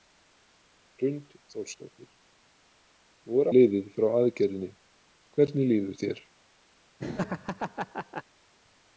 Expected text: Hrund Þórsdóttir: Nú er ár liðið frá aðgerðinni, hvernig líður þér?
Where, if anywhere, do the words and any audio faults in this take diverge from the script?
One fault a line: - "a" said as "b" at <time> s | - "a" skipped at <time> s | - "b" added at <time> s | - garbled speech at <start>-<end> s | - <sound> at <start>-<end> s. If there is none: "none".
- "ár" skipped at 3.5 s
- laugh at 7.0-8.2 s